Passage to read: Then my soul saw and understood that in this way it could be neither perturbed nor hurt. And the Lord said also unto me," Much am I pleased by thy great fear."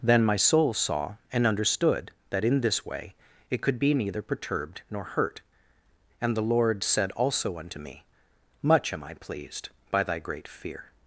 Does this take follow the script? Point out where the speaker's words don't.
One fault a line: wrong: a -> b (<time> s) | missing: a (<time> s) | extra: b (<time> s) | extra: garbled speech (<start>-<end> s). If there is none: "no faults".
no faults